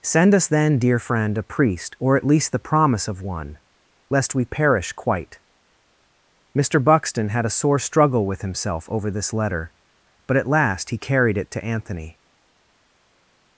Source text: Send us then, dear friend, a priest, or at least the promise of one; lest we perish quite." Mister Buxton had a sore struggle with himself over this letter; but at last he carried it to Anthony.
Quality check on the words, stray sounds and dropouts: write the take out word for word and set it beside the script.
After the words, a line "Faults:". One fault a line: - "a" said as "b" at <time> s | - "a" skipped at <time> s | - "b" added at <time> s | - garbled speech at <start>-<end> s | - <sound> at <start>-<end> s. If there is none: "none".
Send us then, dear friend, a priest, or at least the promise of one; lest we perish quite." Mister Buxton had a sore struggle with himself over this letter; but at last he carried it to Anthony.
Faults:
none